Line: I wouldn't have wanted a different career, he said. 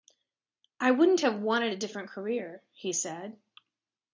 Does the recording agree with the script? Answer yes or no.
yes